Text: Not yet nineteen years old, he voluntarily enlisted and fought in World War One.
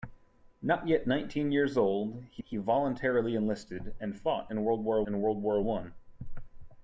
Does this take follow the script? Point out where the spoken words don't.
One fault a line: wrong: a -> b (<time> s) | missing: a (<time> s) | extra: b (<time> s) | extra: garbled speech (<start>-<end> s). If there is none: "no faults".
extra: he (2.4 s)
extra: in World War (5.0 s)